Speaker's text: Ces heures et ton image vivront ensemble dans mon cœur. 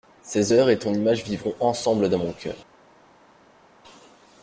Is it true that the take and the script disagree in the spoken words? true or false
false